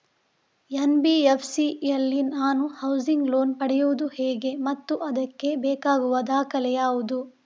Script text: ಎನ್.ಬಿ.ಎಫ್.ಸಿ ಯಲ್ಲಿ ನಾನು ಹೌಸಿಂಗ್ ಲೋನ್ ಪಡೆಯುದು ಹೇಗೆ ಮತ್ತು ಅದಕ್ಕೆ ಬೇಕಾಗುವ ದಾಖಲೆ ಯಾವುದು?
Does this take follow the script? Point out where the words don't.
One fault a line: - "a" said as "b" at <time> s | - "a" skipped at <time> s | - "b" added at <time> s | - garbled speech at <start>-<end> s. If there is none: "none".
none